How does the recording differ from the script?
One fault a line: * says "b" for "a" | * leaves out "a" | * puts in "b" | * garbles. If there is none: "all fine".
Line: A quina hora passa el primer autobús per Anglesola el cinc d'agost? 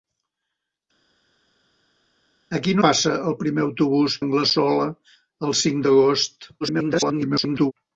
* leaves out "hora"
* leaves out "per"
* garbles